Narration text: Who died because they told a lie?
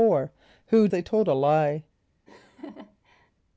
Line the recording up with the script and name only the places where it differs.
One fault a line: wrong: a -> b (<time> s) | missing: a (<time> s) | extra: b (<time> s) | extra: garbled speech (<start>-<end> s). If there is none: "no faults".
missing: died because (0.9 s)